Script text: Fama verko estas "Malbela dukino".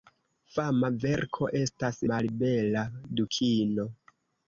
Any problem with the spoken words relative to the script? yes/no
no